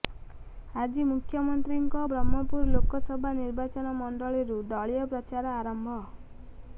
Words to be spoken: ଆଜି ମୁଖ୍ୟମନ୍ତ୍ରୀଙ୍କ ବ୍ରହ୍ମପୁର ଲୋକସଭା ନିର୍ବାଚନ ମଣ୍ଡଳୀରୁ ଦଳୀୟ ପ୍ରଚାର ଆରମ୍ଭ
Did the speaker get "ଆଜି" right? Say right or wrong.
right